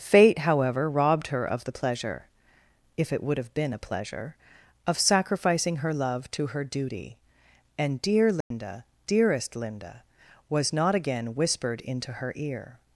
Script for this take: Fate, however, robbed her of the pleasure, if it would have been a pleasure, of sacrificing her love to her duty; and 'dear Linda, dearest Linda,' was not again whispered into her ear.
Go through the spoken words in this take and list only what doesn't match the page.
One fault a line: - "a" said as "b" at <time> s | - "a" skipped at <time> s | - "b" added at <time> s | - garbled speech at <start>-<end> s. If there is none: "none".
none